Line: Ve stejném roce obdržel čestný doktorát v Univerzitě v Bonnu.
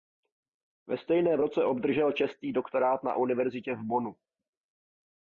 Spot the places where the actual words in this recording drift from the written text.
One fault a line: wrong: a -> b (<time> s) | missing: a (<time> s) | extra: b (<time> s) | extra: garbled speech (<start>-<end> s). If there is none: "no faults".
wrong: v -> na (3.0 s)